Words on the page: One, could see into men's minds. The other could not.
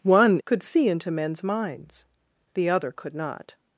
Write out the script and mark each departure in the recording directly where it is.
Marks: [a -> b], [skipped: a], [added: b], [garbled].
One, could see into men's minds. The other could not.